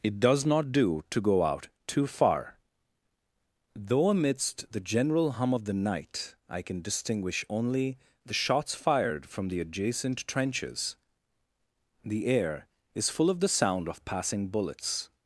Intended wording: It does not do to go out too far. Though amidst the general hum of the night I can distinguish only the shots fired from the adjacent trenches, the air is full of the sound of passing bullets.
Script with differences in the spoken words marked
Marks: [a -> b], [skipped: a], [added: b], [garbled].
It does not do to go out too far. Though amidst the general hum of the night I can distinguish only the shots fired from the adjacent trenches, the air is full of the sound of passing bullets.